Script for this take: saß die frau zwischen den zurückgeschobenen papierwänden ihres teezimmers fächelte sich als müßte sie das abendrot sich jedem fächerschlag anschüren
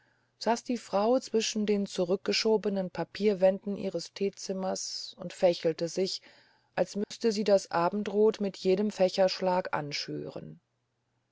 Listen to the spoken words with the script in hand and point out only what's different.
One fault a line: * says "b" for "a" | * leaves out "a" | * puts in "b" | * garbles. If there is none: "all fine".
* puts in "und"
* says "mit" for "sich"